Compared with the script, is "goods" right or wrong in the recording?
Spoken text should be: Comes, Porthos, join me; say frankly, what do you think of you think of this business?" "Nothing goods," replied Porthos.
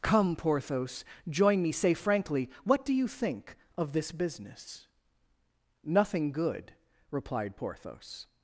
wrong